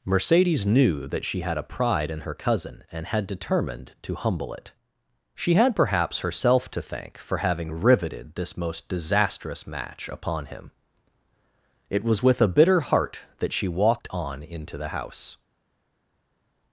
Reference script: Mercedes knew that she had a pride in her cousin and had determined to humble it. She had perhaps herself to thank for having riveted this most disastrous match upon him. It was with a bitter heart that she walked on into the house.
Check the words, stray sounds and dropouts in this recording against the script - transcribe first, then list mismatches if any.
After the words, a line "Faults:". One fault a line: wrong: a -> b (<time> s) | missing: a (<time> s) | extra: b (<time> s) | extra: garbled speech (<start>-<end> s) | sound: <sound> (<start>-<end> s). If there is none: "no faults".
Mercedes knew that she had a pride in her cousin and had determined to humble it. She had perhaps herself to thank for having riveted this most disastrous match upon him. It was with a bitter heart that she walked on into the house.
Faults:
no faults